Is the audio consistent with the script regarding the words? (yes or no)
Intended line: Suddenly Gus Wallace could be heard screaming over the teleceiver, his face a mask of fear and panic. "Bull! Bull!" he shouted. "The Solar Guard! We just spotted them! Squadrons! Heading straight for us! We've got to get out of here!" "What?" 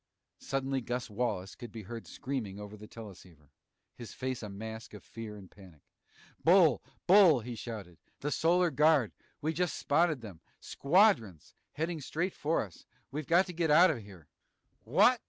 yes